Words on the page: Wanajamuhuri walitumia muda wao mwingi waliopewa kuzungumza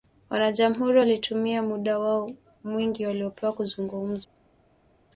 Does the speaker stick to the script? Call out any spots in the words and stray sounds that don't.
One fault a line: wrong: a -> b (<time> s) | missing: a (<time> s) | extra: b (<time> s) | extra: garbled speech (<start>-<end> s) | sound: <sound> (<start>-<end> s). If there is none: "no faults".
no faults